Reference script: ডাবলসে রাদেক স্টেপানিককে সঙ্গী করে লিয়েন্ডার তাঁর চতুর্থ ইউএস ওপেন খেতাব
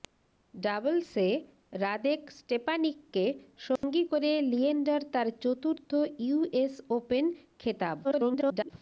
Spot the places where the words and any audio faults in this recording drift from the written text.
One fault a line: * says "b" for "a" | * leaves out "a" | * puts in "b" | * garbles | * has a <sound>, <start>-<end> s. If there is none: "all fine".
* has a dropout, 3.8-3.8 s
* garbles